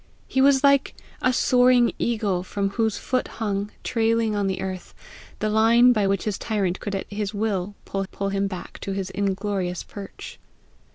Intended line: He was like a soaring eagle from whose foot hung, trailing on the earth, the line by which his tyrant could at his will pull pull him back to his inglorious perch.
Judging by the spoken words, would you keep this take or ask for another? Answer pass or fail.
pass